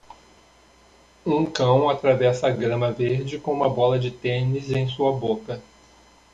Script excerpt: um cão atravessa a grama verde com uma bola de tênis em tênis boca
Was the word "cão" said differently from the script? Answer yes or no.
no